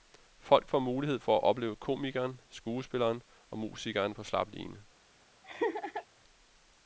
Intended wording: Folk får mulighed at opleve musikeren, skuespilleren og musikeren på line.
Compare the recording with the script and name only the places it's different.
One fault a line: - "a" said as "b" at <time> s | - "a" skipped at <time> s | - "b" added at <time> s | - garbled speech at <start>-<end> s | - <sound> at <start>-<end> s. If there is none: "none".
- "for" added at 1.2 s
- "musikeren" said as "komikeren" at 1.8 s
- "slap" added at 4.2 s
- laugh at 5.4-6.1 s